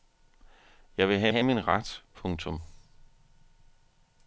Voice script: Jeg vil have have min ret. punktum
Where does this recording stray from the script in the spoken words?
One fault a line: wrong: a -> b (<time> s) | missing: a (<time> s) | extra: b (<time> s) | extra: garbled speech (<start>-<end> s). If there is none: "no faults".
no faults